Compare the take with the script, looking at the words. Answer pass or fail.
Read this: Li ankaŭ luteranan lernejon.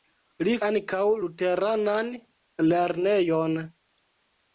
pass